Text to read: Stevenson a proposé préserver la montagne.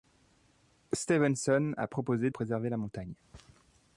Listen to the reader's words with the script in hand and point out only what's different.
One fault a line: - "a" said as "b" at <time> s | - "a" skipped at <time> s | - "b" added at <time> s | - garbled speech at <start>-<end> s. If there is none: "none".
none